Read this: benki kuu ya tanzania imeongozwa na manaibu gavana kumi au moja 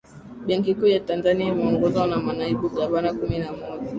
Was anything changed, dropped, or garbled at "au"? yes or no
yes